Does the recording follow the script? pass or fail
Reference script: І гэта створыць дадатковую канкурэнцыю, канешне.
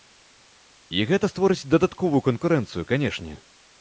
pass